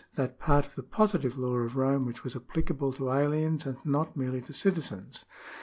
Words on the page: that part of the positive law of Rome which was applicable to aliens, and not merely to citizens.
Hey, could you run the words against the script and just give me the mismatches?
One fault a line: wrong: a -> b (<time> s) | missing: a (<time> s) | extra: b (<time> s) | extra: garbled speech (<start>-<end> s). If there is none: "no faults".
no faults